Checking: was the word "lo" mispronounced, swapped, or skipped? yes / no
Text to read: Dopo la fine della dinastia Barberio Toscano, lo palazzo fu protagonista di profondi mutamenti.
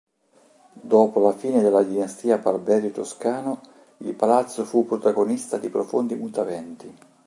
yes